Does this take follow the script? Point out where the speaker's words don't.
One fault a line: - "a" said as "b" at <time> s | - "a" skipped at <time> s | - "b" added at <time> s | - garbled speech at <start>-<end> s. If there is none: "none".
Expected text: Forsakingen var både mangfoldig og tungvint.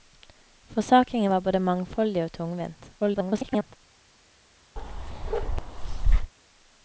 - garbled speech at 3.0-3.8 s